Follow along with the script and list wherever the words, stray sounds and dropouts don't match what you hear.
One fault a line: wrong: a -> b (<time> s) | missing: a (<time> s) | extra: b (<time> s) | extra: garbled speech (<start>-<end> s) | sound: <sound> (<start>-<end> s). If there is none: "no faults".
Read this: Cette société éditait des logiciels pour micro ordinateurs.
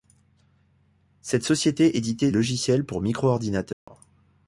missing: des (2.3 s)
sound: dropout (3.7-3.9 s)